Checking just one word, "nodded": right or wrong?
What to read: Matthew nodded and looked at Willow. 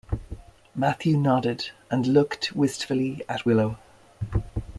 right